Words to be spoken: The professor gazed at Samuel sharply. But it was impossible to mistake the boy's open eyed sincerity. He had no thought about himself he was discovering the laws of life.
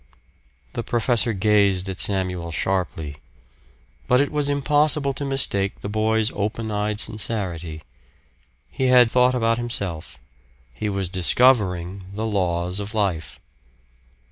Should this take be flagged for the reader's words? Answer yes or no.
yes